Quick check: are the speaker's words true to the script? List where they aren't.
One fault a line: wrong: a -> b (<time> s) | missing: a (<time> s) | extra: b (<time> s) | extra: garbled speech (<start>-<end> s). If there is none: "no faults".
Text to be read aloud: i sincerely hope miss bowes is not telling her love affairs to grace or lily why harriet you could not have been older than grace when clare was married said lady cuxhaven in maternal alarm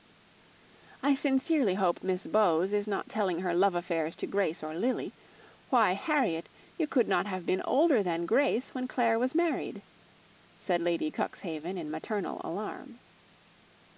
no faults